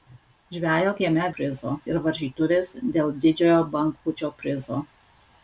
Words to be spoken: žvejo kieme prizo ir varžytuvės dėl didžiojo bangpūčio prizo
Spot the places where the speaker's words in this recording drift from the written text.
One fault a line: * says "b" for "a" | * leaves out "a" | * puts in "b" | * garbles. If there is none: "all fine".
all fine